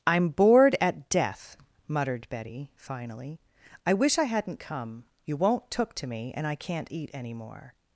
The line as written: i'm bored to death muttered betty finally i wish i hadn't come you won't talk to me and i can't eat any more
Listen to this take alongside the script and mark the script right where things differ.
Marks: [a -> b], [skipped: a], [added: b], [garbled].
i'm bored [to -> at] death muttered betty finally i wish i hadn't come you won't [talk -> took] to me and i can't eat any more